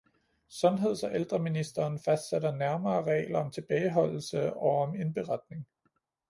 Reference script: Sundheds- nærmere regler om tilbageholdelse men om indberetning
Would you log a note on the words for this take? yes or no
yes